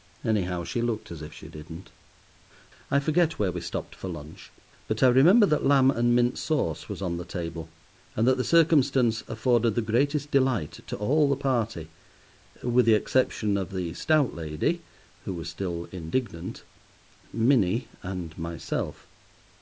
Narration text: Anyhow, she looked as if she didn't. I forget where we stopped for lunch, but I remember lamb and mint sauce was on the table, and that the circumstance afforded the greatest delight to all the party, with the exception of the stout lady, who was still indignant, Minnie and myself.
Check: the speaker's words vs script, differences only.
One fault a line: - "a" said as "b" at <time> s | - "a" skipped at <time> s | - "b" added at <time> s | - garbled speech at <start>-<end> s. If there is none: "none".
- "that" added at 5.5 s